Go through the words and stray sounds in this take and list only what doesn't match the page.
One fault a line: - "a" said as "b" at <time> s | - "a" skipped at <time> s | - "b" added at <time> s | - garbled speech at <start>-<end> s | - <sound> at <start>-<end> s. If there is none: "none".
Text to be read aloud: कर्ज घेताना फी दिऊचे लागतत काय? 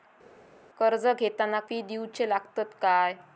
none